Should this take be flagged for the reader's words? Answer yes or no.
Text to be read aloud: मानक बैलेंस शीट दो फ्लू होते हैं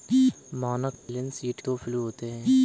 no